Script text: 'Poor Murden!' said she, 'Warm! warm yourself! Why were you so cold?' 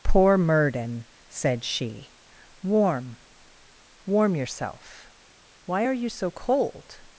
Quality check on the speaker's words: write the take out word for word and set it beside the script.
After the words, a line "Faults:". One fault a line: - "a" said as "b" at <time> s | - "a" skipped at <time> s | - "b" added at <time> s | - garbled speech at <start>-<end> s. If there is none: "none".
'Poor Murden!' said she, 'Warm! warm yourself! Why are you so cold?'
Faults:
- "were" said as "are" at 5.8 s